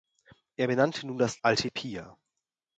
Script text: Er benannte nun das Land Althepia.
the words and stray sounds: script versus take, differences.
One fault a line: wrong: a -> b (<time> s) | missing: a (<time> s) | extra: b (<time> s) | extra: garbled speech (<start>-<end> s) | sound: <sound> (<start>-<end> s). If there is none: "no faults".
missing: Land (1.4 s)